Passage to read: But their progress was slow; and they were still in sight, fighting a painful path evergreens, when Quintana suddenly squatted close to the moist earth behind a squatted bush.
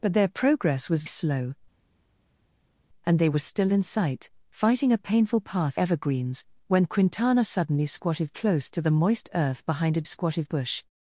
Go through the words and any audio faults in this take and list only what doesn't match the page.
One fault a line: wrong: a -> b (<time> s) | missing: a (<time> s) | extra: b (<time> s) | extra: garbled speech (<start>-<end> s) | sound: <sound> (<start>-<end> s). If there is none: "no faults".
no faults